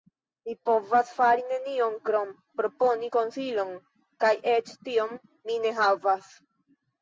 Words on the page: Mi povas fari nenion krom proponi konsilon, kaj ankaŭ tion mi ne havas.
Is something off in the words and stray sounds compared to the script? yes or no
yes